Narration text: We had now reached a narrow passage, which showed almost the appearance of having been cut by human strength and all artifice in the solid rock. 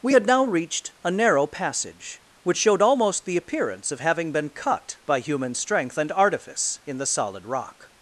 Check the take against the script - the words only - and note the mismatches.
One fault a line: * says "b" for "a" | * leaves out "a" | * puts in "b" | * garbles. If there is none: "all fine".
* leaves out "all"